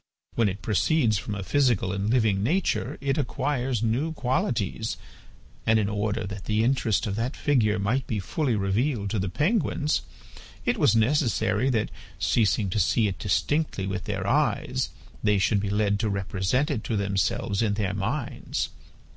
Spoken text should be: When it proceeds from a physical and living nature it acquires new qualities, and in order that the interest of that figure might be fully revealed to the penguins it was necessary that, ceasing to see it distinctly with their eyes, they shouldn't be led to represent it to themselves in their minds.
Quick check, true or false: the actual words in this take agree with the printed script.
false